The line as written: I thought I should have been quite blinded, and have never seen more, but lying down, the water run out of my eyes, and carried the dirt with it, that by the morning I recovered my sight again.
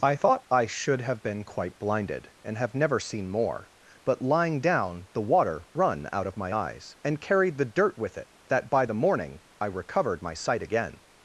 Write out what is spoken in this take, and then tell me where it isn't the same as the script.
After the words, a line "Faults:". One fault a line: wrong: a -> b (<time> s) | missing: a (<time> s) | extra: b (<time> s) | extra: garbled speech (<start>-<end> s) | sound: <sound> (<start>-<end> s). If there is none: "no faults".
I thought I should have been quite blinded, and have never seen more, but lying down, the water run out of my eyes, and carried the dirt with it, that by the morning I recovered my sight again.
Faults:
no faults